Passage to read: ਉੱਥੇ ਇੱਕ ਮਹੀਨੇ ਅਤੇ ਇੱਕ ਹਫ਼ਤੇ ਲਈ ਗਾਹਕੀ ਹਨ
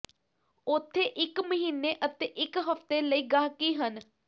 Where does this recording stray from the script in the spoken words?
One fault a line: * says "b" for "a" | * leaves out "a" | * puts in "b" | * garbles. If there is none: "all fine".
all fine